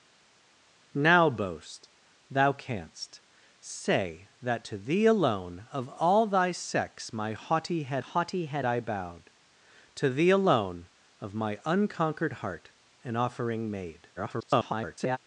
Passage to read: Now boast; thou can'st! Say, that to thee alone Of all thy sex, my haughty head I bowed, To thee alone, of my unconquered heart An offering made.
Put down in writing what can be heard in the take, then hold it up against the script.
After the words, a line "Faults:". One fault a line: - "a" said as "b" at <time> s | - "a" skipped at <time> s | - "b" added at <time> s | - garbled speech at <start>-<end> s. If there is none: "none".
Now boast; thou can'st! Say, that to thee alone Of all thy sex, my haughty head haughty head I bowed, To thee alone, of my unconquered heart An offering made. [garbled]
Faults:
- "haughty head" added at 8.0 s
- garbled speech at 14.2-15.2 s